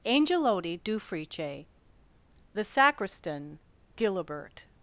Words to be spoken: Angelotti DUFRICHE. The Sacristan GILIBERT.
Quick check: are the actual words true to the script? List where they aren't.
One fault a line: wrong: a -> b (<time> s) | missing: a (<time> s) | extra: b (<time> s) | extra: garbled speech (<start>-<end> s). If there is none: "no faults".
no faults